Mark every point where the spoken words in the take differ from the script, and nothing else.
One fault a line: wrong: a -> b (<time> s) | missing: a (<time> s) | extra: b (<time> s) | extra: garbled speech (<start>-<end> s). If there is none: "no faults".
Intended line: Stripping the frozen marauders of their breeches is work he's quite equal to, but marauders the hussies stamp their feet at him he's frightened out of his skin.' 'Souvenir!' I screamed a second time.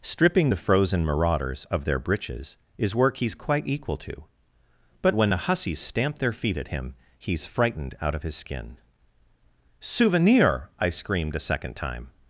wrong: marauders -> when (5.1 s)